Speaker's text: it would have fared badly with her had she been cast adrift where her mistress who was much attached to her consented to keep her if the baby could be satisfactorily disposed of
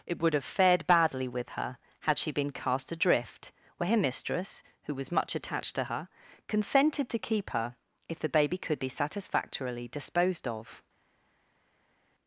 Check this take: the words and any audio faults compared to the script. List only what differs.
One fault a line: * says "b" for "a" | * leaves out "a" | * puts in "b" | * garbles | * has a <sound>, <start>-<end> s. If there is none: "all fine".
all fine